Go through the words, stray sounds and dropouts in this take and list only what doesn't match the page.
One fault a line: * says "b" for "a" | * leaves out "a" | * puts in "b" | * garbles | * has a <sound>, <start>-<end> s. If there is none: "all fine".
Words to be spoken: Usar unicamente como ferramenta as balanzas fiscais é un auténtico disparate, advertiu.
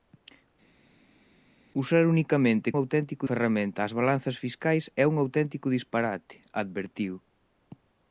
* says "auténtico" for "como"